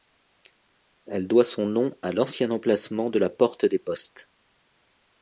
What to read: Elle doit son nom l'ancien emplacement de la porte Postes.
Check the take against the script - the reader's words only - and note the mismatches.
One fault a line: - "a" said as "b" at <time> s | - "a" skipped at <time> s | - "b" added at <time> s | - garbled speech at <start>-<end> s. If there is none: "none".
- "à" added at 2.0 s
- "des" added at 3.7 s